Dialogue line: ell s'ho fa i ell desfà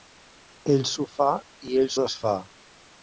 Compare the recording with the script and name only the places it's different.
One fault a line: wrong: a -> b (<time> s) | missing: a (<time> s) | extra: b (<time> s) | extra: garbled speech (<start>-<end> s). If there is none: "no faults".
no faults